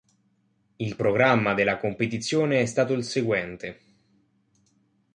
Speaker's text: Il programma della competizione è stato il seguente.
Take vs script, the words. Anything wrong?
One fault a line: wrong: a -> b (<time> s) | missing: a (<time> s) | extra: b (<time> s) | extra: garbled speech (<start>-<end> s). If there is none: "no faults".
no faults